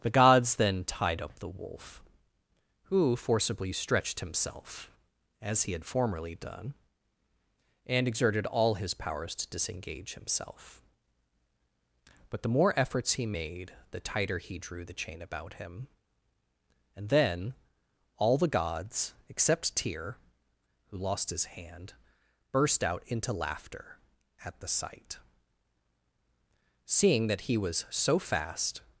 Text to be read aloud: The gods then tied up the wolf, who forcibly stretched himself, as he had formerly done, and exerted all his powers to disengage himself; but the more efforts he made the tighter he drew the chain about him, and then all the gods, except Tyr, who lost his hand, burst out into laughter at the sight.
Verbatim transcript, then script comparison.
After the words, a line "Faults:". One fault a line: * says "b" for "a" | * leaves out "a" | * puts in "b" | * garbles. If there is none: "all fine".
The gods then tied up the wolf, who forcibly stretched himself, as he had formerly done, and exerted all his powers to disengage himself; but the more efforts he made the tighter he drew the chain about him, and then all the gods, except Tyr, who lost his hand, burst out into laughter at the sight. Seeing that he was so fast
Faults:
* puts in "Seeing that he was so fast"